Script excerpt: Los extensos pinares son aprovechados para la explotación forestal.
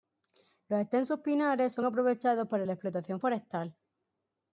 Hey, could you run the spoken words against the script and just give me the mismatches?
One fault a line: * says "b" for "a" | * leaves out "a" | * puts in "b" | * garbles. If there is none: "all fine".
all fine